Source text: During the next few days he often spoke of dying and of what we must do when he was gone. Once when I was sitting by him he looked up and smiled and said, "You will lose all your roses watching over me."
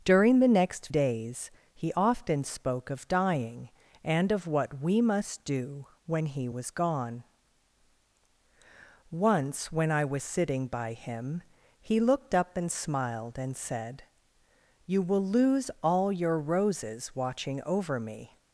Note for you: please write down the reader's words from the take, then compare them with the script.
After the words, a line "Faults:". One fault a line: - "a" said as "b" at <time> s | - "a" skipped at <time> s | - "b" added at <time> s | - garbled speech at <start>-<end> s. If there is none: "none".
During the next days he often spoke of dying and of what we must do when he was gone. Once when I was sitting by him he looked up and smiled and said, "You will lose all your roses watching over me."
Faults:
- "few" skipped at 0.9 s